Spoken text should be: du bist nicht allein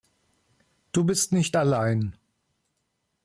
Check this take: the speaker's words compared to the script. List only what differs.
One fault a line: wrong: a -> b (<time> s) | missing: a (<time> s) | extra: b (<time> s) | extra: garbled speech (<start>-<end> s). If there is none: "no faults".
no faults